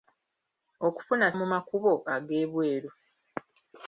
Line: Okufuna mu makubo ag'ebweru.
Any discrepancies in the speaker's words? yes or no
no